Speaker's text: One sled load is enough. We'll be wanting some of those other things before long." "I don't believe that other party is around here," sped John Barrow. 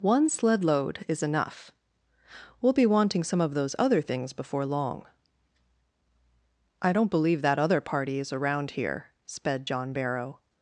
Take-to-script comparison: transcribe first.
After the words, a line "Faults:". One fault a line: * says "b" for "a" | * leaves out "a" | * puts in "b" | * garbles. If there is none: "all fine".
One sled load is enough. We'll be wanting some of those other things before long." "I don't believe that other party is around here," sped John Barrow.
Faults:
all fine